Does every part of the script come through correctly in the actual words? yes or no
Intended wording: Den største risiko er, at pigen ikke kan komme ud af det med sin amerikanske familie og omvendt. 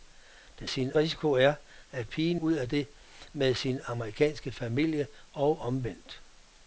no